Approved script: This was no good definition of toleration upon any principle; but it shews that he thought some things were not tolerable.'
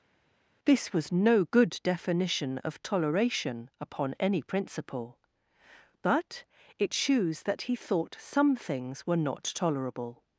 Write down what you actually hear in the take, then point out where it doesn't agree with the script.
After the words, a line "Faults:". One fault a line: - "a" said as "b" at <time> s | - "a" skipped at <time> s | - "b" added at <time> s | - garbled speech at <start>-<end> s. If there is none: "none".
This was no good definition of toleration upon any principle; but it shews that he thought some things were not tolerable.'
Faults:
none